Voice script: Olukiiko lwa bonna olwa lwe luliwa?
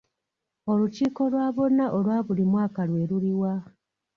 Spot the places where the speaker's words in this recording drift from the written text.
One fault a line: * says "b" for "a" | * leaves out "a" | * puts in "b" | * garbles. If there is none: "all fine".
* puts in "buli mwaka"